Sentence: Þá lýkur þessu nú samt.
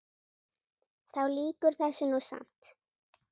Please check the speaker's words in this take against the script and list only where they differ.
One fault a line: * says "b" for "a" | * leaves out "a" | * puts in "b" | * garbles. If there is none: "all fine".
all fine